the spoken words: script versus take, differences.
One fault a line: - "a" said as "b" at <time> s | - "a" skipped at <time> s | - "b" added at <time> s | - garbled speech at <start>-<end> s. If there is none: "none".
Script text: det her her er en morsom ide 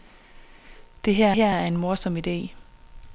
none